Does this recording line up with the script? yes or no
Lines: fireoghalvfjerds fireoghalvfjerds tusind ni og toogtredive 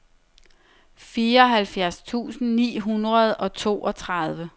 no